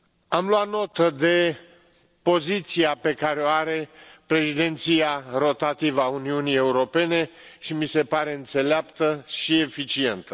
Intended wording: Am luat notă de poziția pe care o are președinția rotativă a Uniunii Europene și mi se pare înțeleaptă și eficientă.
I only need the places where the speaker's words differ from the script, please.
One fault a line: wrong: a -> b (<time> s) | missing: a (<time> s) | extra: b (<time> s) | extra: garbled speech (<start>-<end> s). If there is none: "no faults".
no faults